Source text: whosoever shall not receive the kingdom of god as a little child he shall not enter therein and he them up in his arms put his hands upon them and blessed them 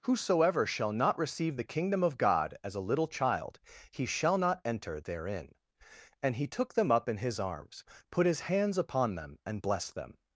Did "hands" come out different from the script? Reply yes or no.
no